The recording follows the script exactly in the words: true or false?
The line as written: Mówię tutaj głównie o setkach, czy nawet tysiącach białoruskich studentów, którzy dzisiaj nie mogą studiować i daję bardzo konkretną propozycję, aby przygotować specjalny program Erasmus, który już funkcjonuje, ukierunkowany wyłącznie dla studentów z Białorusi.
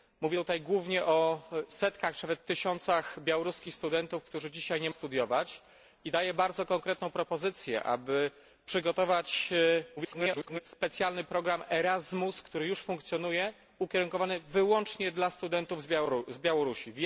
false